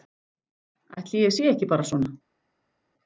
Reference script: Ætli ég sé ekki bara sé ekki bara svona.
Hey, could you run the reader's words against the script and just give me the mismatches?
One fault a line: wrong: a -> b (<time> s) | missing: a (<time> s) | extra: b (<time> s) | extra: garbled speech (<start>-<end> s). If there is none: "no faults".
missing: sé ekki bara (1.9 s)